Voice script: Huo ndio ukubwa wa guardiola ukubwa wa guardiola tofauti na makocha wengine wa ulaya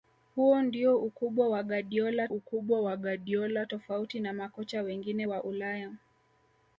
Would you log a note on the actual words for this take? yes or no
no